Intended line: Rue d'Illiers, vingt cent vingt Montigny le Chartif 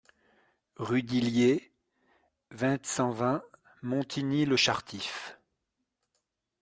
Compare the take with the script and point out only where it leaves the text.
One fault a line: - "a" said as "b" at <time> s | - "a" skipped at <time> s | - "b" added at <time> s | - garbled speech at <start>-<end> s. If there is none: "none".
none